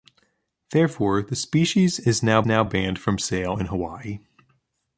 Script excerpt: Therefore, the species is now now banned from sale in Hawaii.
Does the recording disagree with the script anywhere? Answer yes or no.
no